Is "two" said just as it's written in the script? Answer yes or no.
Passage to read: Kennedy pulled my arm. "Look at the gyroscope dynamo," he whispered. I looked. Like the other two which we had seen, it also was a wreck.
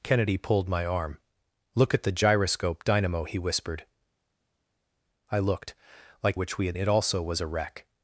no